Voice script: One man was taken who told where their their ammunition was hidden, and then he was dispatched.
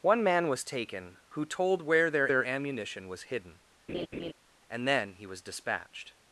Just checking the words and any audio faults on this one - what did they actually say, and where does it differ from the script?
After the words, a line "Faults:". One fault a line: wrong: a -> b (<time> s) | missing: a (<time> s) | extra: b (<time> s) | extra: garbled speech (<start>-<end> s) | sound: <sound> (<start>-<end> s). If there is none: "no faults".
One man was taken who told where their their ammunition was hidden, and then he was dispatched.
Faults:
sound: laugh (3.9-4.3 s)